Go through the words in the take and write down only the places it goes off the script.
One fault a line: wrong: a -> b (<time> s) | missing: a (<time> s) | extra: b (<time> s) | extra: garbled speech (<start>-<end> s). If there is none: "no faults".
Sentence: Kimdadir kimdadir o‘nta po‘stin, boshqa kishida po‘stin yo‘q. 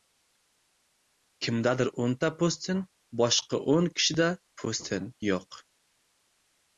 missing: kimdadir (1.9 s)
extra: o‘n (3.7 s)